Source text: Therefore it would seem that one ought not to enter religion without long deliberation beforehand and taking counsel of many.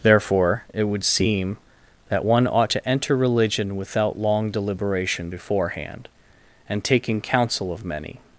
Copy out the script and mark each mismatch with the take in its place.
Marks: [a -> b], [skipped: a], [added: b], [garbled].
Therefore it would seem that one ought [skipped: not] to enter religion without long deliberation beforehand and taking counsel of many.